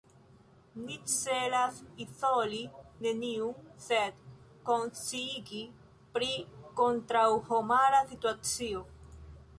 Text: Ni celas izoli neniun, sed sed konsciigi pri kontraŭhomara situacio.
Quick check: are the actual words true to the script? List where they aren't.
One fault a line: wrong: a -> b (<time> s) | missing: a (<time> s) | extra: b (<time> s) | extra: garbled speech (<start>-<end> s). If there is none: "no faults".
missing: sed (4.2 s)